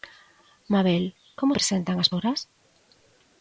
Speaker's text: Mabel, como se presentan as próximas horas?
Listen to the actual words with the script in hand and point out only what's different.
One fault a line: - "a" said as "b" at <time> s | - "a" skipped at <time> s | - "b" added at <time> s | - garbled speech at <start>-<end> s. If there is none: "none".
- "se" skipped at 1.5 s
- "próximas" skipped at 2.1 s